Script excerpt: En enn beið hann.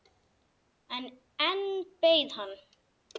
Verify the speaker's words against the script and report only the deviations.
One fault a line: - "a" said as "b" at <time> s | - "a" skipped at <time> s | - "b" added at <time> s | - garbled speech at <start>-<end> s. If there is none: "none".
none